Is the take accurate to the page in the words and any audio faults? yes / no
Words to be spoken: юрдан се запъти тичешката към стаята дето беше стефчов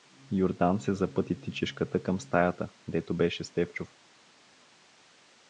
yes